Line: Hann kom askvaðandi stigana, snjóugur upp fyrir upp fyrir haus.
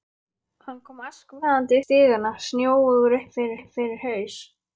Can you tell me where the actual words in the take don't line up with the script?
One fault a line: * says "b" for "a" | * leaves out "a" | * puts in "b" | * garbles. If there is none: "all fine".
all fine